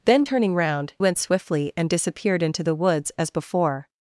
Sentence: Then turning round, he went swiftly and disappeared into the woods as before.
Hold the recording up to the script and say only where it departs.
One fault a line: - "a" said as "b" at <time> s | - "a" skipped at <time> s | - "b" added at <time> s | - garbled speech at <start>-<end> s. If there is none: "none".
- "he" skipped at 0.9 s